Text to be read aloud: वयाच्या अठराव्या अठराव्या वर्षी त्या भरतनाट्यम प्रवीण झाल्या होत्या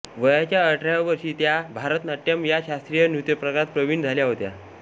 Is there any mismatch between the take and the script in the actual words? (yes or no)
yes